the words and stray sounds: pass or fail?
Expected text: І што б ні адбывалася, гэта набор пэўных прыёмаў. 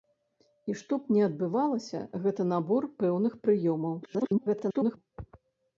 fail